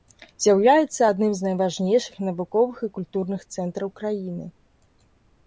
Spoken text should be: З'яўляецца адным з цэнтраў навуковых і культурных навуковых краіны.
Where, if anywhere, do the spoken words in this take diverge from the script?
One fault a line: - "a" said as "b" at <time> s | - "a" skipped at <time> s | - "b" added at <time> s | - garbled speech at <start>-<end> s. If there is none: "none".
- "цэнтраў" said as "найважнейшых" at 1.5 s
- "навуковых" said as "цэнтраў" at 3.6 s